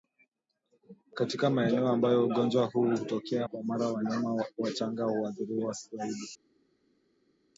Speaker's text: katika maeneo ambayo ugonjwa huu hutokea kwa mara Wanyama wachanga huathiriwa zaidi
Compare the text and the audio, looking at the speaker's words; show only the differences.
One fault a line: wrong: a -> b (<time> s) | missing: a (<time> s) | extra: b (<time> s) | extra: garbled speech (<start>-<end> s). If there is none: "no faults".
no faults